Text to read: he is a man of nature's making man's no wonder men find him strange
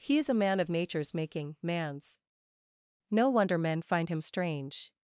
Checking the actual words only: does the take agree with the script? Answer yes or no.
yes